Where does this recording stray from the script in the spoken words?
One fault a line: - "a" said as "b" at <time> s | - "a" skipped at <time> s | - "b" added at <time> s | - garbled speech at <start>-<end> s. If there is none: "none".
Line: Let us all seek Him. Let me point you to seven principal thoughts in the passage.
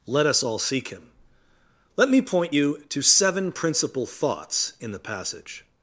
none